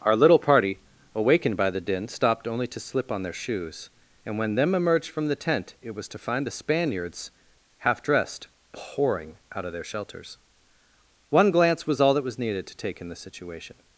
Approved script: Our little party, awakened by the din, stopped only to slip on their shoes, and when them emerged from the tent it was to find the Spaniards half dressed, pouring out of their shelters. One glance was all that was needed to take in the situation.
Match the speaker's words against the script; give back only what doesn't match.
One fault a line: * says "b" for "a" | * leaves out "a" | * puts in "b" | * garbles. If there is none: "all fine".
all fine